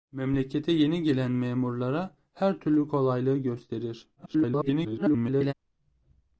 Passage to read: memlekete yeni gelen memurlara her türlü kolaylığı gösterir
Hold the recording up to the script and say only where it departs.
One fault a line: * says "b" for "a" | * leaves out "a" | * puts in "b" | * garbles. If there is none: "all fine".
* garbles